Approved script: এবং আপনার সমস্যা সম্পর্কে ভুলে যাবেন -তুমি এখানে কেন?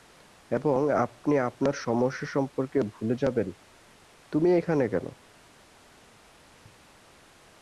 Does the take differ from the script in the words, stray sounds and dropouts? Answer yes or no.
yes